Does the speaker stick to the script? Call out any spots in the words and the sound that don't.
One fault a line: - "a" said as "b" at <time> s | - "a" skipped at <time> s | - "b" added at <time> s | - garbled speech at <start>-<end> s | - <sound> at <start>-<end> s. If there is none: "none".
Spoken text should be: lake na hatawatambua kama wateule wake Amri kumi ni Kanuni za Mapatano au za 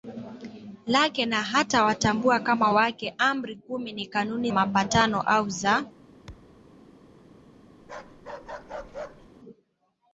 - "wateule" skipped at 2.7 s
- "za" skipped at 4.5 s
- thud at 6.3-6.7 s
- bark at 7.8-9.3 s